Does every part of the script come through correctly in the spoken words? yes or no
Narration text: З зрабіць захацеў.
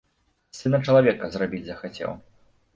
no